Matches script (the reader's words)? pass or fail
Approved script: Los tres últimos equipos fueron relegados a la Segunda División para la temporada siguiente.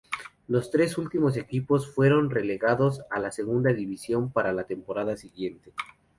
pass